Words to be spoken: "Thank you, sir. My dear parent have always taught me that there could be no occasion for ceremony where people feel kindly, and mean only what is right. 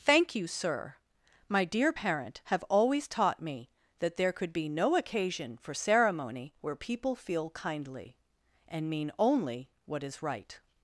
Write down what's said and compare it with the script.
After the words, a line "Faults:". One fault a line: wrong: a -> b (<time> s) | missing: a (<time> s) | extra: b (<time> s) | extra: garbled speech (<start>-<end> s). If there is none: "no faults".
"Thank you, sir. My dear parent have always taught me that there could be no occasion for ceremony where people feel kindly, and mean only what is right.
Faults:
no faults